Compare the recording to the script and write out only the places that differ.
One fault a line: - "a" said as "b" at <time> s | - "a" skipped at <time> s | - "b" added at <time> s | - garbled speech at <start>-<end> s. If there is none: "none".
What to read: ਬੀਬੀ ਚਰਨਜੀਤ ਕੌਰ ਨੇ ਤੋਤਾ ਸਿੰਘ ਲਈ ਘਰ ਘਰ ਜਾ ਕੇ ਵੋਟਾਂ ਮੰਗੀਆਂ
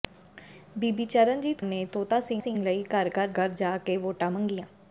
- "ਕੌਰ" skipped at 1.6 s
- "ਸਿੰਘ" added at 2.4 s
- "ਘਰ" added at 3.4 s